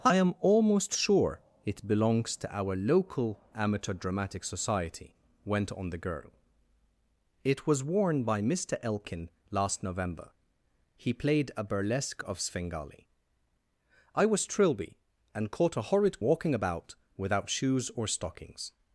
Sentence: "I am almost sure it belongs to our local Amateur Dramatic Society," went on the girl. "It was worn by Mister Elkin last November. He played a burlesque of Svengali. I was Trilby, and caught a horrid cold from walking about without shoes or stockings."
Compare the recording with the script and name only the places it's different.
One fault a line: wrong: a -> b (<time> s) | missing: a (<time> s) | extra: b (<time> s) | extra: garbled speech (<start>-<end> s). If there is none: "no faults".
missing: cold from (16.2 s)